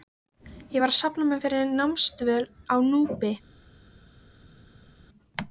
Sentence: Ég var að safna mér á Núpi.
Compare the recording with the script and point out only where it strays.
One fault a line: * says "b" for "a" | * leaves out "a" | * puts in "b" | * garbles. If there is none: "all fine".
* puts in "fyrir námsdvöl"